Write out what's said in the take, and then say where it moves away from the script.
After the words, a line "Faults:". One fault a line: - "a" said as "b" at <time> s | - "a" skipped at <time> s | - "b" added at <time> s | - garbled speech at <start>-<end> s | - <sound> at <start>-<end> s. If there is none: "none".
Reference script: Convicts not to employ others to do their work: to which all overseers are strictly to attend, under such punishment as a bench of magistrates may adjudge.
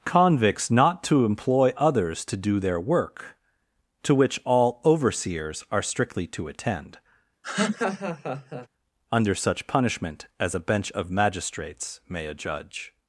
Convicts not to employ others to do their work: to which all overseers are strictly to attend, under such punishment as a bench of magistrates may adjudge.
Faults:
- laugh at 7.4-8.7 s